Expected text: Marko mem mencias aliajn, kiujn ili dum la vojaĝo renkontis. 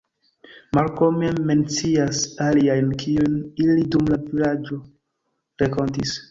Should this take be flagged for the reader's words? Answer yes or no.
no